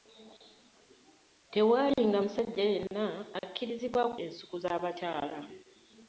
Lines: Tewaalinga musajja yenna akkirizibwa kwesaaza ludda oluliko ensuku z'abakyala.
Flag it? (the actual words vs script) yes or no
yes